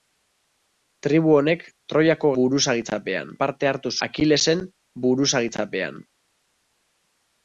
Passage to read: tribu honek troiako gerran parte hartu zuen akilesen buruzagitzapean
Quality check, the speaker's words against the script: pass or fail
fail